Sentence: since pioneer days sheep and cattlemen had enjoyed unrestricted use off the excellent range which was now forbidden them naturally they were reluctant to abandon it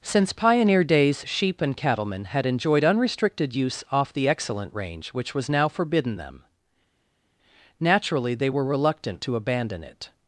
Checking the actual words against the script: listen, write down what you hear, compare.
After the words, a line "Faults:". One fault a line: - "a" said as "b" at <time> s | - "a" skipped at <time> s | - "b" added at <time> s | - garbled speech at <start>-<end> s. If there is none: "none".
since pioneer days sheep and cattlemen had enjoyed unrestricted use off the excellent range which was now forbidden them naturally they were reluctant to abandon it
Faults:
none